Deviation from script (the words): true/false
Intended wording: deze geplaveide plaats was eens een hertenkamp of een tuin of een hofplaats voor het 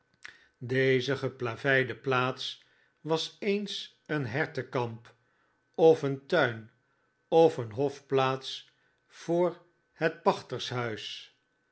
false